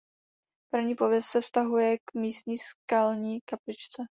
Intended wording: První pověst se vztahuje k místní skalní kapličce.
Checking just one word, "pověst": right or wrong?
right